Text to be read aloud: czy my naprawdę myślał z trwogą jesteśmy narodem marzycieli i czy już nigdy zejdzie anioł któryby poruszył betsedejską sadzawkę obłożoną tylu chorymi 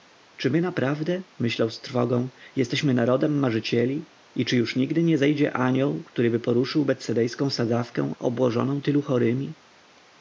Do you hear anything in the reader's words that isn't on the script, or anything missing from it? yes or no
yes